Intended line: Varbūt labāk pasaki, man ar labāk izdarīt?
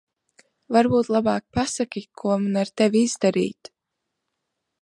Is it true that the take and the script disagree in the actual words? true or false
true